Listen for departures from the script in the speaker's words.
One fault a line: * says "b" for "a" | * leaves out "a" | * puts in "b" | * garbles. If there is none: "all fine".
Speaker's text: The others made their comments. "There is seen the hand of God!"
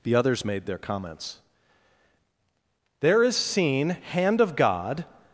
* leaves out "the"